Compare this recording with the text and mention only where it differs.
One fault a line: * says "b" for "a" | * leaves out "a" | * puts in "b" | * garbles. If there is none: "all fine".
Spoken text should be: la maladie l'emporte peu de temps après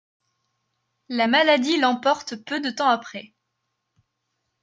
all fine